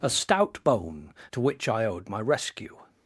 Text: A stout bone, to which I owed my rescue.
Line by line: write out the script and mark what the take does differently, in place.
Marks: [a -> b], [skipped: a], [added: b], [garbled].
A stout bone, to which I owed my rescue.